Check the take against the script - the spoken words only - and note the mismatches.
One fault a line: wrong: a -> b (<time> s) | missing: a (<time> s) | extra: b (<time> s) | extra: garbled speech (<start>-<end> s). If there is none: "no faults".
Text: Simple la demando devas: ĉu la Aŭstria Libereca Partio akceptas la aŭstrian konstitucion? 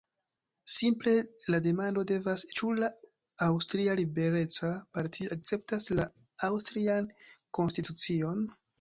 no faults